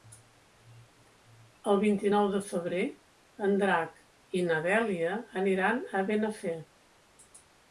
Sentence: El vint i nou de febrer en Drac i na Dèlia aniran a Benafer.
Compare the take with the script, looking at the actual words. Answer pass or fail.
pass